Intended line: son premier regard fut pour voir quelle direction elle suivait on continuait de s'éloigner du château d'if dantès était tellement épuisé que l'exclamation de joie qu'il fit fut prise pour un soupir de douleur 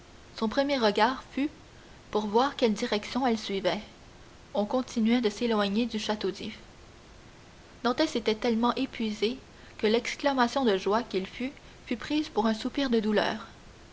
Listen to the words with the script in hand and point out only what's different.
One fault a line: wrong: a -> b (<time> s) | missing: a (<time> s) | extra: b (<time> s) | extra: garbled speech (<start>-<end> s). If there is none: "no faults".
no faults